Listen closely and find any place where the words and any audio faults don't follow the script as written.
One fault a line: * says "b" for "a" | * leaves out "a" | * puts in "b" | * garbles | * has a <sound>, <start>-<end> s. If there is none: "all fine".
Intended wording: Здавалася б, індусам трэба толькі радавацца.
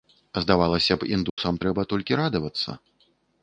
* has a dropout, 1.3-1.4 s